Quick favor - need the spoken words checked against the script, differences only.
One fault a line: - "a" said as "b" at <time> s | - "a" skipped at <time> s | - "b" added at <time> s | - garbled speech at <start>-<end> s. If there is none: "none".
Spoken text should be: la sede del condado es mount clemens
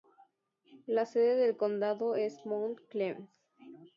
none